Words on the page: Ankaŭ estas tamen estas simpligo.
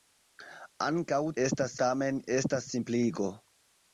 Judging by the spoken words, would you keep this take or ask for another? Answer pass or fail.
pass